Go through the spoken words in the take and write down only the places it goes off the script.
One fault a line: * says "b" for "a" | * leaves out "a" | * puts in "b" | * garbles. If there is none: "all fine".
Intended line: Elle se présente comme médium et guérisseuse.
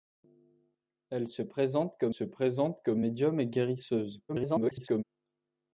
* puts in "se présente comme"
* garbles